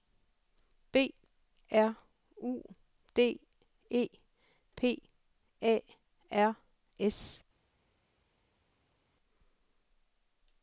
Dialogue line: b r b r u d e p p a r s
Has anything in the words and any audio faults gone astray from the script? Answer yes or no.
yes